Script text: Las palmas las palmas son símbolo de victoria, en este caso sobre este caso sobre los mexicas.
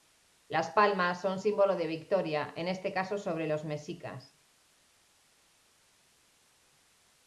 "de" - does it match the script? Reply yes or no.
yes